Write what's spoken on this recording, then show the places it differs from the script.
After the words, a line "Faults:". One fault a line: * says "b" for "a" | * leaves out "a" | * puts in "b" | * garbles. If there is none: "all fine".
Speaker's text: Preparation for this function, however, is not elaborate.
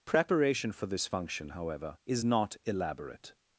Preparation for this function, however, is not elaborate.
Faults:
all fine